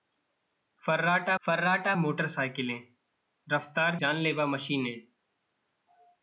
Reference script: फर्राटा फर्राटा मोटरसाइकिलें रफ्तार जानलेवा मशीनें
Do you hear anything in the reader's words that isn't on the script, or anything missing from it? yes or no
no